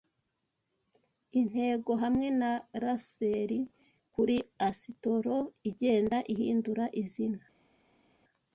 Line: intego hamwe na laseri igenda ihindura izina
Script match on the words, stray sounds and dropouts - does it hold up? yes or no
no